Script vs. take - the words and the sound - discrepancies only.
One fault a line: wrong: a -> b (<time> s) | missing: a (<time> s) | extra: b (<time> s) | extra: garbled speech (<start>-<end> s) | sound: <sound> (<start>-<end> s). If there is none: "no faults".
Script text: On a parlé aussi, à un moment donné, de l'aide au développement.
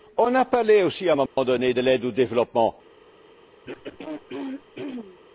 sound: dropout (1.3-1.4 s)
sound: throat clearing (3.7-5.2 s)